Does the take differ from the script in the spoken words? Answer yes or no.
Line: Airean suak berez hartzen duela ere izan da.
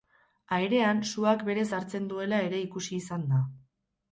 yes